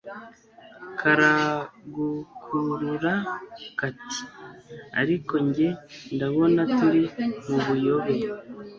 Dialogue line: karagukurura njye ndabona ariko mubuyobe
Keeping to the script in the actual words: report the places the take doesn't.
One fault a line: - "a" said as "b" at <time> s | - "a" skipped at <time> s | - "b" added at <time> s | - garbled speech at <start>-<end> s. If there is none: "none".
- "kati ariko" added at 3.8 s
- "ariko" said as "turi" at 6.8 s